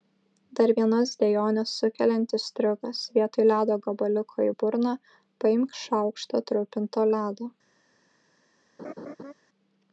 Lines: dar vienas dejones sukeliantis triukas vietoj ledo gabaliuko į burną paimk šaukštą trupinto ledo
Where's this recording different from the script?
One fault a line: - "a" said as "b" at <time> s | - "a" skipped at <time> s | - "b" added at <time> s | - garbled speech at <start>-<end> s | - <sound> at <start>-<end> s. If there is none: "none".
- laugh at 8.8-9.3 s